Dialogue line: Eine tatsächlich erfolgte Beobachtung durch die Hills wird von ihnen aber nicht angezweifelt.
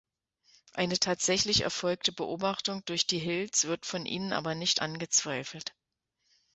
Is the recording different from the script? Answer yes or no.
no